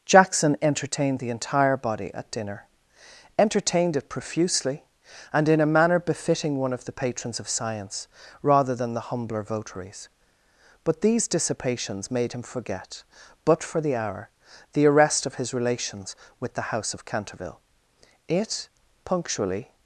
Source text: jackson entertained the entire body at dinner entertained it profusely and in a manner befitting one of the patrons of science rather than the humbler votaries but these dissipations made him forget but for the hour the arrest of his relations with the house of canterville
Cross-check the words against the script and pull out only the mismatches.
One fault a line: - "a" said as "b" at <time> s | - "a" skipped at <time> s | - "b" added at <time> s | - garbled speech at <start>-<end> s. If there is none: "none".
- "it punctually" added at 18.3 s